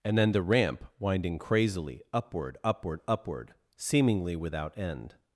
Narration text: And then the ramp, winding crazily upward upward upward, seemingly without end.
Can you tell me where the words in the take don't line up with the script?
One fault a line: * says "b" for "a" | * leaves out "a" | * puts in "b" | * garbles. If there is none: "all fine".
all fine